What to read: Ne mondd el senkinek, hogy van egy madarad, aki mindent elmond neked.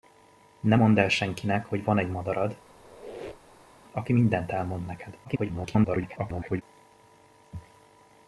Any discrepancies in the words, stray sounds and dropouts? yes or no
yes